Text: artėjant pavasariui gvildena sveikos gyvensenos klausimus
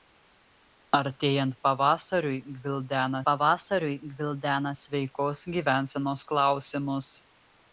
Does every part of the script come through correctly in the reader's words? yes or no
no